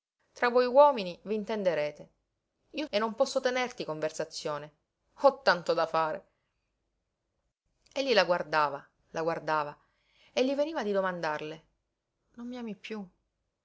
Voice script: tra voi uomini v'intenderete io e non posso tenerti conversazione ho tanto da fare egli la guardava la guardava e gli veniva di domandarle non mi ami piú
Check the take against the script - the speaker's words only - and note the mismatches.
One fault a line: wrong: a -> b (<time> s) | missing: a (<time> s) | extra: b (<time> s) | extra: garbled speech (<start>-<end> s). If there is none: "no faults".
no faults